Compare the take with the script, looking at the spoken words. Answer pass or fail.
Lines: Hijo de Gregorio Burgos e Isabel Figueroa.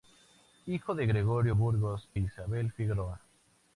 fail